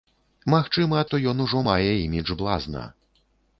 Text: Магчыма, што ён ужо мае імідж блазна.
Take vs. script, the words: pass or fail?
pass